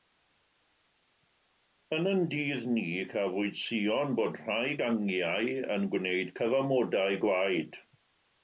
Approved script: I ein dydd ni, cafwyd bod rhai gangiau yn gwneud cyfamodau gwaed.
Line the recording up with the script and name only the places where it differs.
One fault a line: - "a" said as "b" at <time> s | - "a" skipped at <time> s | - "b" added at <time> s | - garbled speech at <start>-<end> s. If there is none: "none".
- "I" said as "Yn" at 2.0 s
- "sïon" added at 3.6 s